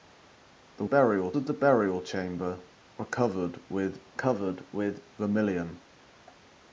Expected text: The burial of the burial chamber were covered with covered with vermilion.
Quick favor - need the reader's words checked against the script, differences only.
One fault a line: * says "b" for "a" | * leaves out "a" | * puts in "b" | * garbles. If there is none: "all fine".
all fine